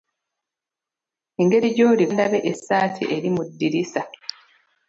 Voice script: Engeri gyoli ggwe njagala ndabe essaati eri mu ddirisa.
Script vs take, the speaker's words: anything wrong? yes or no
yes